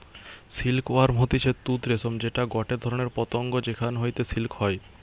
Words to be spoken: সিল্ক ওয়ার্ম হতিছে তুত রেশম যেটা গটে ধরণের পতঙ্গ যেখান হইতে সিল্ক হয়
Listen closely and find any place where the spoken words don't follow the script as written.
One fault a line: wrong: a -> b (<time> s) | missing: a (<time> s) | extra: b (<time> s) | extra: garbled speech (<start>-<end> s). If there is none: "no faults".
no faults